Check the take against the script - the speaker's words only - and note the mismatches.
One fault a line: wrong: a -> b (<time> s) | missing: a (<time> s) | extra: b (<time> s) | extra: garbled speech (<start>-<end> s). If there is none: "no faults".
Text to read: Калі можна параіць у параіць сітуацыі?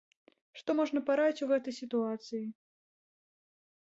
wrong: Калі -> Што (0.6 s)
wrong: параіць -> гэтай (1.5 s)